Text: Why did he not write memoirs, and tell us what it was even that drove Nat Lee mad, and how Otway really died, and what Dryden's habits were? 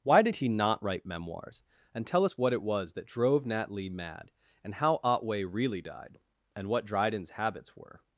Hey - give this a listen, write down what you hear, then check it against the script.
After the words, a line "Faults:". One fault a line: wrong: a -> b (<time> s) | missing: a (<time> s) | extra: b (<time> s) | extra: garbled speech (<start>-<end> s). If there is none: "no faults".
Why did he not write memoirs, and tell us what it was that drove Nat Lee mad, and how Otway really died, and what Dryden's habits were?
Faults:
missing: even (2.9 s)